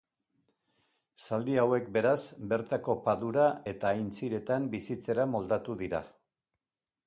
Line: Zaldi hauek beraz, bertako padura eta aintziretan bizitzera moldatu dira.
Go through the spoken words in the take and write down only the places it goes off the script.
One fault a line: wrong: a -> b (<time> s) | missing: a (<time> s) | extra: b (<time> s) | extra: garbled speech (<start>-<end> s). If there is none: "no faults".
no faults